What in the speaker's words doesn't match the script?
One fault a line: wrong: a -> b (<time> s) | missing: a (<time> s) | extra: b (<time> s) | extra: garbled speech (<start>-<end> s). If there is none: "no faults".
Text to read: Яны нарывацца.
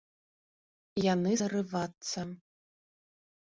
no faults